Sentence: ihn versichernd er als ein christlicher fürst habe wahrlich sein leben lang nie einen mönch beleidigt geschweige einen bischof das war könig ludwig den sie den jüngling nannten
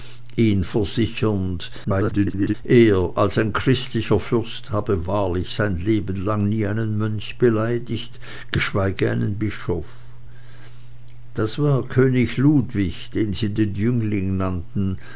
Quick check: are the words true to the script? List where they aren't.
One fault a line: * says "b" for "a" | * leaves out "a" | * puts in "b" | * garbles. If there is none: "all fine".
* garbles